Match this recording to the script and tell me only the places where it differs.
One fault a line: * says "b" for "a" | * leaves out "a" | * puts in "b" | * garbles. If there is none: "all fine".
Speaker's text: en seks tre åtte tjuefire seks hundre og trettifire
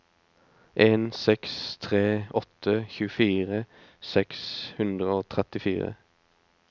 all fine